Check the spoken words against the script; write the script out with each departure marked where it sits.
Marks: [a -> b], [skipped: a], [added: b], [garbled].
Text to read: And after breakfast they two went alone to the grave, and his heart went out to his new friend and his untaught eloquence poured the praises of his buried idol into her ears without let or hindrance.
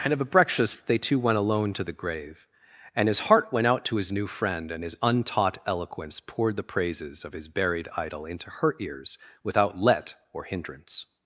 And [after -> of a] breakfast they two went alone to the grave, and his heart went out to his new friend and his untaught eloquence poured the praises of his buried idol into her ears without let or hindrance.